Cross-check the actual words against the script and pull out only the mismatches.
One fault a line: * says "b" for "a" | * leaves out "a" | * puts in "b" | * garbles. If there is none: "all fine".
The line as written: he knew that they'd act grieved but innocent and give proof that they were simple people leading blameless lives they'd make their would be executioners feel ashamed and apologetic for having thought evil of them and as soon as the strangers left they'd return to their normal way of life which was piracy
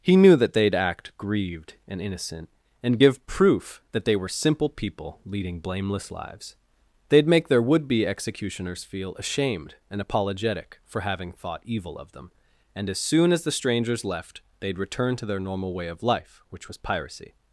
* says "and" for "but"